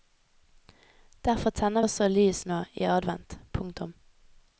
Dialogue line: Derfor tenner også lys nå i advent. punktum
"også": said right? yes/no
yes